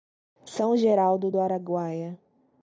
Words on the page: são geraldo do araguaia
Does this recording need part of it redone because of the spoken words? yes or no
no